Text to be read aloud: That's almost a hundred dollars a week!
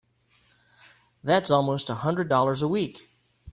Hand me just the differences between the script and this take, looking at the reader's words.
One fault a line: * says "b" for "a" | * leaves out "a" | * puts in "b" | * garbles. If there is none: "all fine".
all fine